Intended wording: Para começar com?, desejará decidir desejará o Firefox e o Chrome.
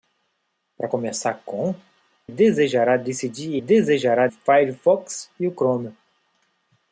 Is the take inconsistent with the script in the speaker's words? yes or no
no